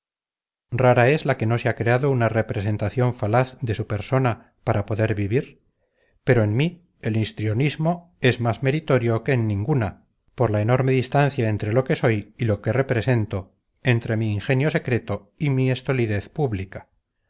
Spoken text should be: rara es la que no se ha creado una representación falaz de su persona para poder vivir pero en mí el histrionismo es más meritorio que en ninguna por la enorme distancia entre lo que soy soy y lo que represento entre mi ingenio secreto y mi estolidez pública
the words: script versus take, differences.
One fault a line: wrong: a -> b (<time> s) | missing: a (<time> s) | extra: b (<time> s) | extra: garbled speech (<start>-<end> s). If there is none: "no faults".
missing: soy (12.3 s)